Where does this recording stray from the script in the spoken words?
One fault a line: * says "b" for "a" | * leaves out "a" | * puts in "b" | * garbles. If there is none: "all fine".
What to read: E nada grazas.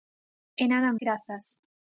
all fine